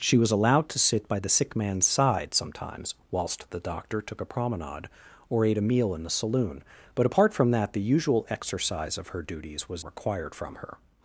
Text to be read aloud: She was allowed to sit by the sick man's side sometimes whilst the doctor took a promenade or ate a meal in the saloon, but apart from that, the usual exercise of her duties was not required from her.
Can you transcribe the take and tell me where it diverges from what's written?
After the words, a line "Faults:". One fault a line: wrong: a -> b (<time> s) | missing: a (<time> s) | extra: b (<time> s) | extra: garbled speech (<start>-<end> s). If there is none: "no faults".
She was allowed to sit by the sick man's side sometimes whilst the doctor took a promenade or ate a meal in the saloon, but apart from that, the usual exercise of her duties was required from her.
Faults:
missing: not (9.8 s)